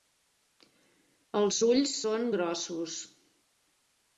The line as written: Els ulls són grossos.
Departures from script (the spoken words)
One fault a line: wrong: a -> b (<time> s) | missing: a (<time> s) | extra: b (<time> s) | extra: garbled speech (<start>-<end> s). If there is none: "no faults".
no faults